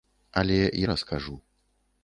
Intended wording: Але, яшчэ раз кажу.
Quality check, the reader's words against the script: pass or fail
fail